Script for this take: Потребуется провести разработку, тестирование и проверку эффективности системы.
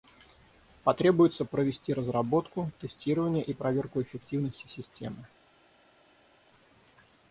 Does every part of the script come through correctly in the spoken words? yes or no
yes